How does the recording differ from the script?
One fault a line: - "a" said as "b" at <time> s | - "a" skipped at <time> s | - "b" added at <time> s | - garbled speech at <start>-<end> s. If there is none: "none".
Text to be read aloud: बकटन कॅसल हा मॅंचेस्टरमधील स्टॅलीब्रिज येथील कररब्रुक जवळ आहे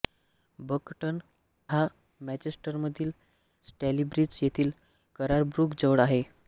- "कॅसल" skipped at 1.2 s